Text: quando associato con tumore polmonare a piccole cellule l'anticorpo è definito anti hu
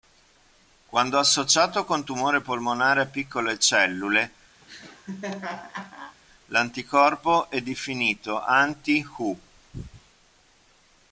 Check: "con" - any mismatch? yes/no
no